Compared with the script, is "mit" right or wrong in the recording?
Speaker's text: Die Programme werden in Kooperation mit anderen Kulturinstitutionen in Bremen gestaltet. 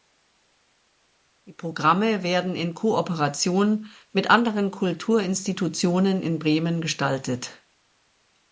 right